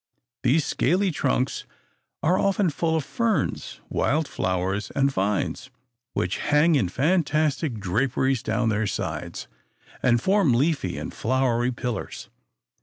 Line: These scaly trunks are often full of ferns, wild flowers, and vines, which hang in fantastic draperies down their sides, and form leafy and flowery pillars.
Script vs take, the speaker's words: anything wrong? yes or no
no